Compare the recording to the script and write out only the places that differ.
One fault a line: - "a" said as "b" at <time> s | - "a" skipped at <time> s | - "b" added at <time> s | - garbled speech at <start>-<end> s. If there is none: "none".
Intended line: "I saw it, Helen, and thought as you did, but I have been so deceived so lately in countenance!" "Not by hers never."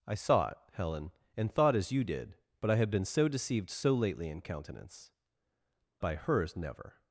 - "Not" skipped at 5.1 s